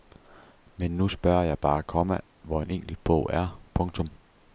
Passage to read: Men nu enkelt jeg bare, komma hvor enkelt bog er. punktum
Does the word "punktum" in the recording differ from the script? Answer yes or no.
no